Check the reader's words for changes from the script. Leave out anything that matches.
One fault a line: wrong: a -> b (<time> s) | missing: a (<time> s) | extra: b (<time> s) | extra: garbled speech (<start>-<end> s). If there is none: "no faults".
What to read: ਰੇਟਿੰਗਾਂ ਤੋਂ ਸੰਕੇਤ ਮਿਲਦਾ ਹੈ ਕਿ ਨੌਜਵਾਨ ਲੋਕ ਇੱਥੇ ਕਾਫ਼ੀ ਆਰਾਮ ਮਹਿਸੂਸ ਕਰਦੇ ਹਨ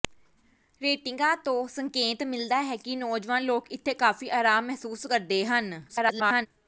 extra: garbled speech (5.9-6.5 s)